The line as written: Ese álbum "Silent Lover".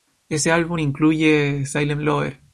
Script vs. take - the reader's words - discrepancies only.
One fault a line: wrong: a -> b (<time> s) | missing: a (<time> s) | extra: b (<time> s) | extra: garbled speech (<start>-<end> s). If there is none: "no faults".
extra: incluye (0.8 s)